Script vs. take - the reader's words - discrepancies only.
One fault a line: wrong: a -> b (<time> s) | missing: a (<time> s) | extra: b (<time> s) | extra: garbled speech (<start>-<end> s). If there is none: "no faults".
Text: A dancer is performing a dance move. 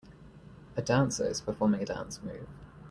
no faults